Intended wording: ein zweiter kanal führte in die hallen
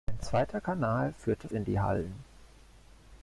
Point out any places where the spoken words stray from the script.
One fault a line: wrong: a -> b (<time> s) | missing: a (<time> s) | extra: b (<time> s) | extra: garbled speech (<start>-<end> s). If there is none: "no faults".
no faults